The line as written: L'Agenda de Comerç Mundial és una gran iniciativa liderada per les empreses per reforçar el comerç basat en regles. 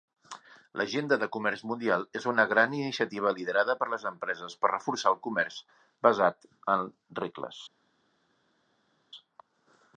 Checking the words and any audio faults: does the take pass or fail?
pass